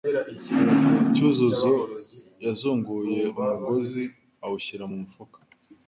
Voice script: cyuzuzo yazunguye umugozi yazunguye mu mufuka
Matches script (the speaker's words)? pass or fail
fail